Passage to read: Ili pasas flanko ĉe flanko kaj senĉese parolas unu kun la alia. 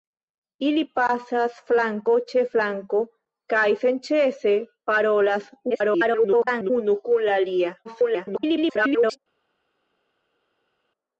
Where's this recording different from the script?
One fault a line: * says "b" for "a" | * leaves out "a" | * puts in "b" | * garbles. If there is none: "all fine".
* garbles
* garbles